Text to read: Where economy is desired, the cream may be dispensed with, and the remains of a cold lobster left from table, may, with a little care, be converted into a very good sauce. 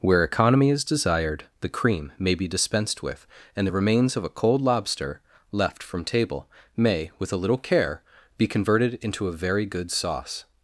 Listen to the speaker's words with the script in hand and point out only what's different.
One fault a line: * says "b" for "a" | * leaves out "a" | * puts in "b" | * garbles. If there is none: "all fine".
all fine